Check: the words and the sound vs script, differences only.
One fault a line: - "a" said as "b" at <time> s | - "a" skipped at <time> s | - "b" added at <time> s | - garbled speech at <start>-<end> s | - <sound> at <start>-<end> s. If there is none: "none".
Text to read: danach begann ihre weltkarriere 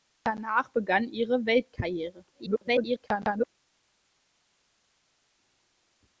- garbled speech at 2.3-3.5 s